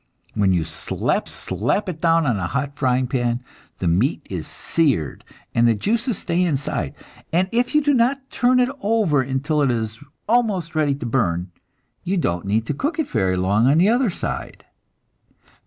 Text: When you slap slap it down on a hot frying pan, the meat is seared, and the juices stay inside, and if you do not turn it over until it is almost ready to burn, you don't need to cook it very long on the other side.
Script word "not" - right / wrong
right